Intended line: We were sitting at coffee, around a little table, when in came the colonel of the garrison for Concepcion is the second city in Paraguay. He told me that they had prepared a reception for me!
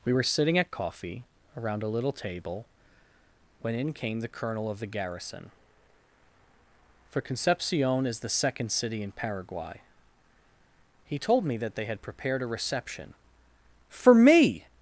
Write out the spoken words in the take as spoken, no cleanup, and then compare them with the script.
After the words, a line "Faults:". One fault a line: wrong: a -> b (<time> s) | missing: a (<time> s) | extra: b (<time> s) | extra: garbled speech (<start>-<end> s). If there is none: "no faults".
We were sitting at coffee, around a little table, when in came the colonel of the garrison for Concepcion is the second city in Paraguay. He told me that they had prepared a reception for me!
Faults:
no faults